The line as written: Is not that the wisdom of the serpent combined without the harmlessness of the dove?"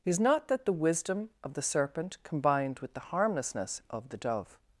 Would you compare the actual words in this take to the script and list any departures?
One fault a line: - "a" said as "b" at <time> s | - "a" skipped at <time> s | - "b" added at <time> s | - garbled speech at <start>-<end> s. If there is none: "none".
- "without" said as "with" at 2.8 s